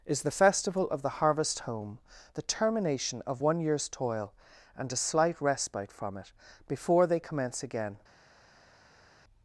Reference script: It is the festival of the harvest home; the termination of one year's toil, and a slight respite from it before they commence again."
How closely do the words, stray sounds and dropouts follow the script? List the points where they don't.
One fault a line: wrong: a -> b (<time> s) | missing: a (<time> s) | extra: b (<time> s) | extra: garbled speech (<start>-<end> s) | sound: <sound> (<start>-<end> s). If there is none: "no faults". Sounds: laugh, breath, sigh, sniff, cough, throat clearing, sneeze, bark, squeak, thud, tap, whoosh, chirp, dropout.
missing: It (0.1 s)